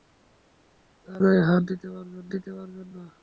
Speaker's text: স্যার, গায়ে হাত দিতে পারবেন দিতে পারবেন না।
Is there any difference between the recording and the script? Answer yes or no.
no